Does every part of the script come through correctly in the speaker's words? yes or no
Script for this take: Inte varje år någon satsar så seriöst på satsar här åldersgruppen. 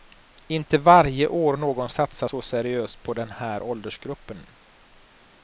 no